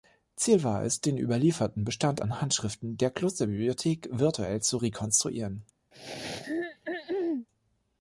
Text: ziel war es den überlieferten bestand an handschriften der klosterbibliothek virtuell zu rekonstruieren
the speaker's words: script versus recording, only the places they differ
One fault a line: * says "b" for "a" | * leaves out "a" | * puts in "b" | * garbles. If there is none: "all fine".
all fine